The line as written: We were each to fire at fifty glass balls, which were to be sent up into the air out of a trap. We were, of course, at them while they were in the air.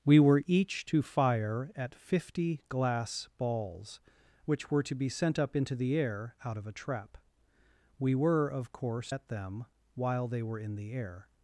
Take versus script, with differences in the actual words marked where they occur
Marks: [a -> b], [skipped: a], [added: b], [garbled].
We were each to fire at fifty glass balls, which were to be sent up into the air out of a trap. We were, of course, at them while they were in the air.